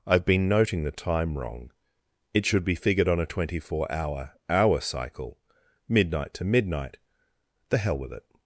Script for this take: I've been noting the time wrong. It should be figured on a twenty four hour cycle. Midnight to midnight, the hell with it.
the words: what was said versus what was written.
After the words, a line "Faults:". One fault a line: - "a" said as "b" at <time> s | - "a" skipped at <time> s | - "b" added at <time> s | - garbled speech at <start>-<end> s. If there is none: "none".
I've been noting the time wrong. It should be figured on a twenty four hour hour cycle. Midnight to midnight, the hell with it.
Faults:
- "hour" added at 4.5 s